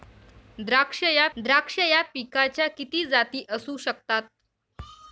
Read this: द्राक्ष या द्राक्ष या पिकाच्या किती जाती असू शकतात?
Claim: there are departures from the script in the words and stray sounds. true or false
false